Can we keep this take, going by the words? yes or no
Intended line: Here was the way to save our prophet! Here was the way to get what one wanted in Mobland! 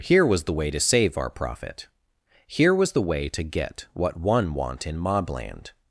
no